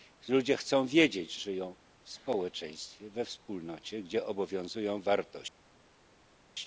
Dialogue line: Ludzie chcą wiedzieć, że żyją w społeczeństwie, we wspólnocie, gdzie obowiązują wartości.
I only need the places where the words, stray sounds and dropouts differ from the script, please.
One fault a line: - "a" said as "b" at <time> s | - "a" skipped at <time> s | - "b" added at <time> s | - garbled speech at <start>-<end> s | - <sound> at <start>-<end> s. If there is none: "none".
- "że" skipped at 1.4 s